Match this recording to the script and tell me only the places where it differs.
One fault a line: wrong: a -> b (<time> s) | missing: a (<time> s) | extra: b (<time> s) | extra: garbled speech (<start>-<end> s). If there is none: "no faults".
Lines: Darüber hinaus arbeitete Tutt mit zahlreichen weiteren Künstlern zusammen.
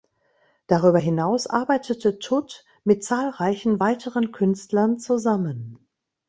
no faults